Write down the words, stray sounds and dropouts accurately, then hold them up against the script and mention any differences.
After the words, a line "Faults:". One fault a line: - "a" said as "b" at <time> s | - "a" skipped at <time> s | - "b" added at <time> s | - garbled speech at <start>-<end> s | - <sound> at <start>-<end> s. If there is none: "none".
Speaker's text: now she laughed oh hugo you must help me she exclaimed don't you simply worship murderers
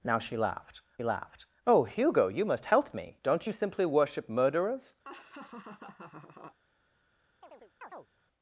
now she laughed laughed oh hugo you must help me don't you simply worship murderers
Faults:
- "laughed" added at 1.0 s
- "she exclaimed" skipped at 3.2 s
- laugh at 5.0-6.6 s
- chirp at 7.4-8.1 s